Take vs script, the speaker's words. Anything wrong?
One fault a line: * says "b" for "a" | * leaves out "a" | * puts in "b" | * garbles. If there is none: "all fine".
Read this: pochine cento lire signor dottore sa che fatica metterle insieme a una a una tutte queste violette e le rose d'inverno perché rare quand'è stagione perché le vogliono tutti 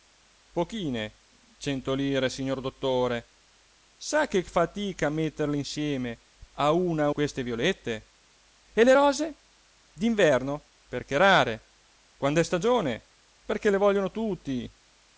* leaves out "una tutte"